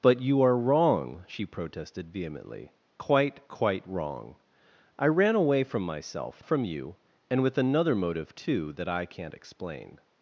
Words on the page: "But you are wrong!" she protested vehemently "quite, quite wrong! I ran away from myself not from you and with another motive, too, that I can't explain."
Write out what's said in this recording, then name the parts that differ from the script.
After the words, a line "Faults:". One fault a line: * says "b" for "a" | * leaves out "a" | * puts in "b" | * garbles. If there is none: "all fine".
"But you are wrong!" she protested vehemently "quite, quite wrong! I ran away from myself from you and with another motive, too, that I can't explain."
Faults:
* leaves out "not"